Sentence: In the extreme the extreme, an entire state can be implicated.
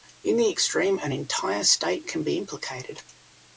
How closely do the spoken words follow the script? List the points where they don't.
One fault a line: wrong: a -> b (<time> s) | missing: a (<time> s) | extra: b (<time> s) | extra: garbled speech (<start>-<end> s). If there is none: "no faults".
missing: the extreme (1.0 s)